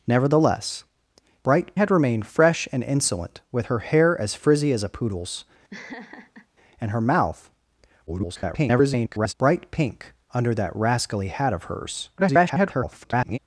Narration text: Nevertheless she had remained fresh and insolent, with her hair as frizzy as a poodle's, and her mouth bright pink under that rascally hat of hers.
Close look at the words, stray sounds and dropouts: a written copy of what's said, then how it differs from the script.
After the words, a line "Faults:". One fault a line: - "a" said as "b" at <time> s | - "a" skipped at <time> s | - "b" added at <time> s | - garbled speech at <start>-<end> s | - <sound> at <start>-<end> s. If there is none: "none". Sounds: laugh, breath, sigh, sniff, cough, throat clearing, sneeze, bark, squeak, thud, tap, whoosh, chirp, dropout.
Nevertheless bright had remained fresh and insolent, with her hair as frizzy as a poodle's, and her mouth [garbled] bright pink under that rascally hat of hers. [garbled]
Faults:
- "she" said as "bright" at 1.4 s
- laugh at 5.7-6.5 s
- garbled speech at 8.1-9.3 s
- garbled speech at 12.2-13.4 s